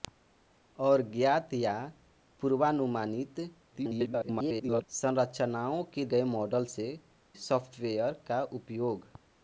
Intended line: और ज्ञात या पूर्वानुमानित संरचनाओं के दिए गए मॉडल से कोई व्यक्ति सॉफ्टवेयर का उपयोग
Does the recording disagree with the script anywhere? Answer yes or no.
yes